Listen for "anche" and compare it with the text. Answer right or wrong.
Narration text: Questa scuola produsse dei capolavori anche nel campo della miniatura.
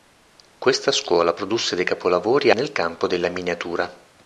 wrong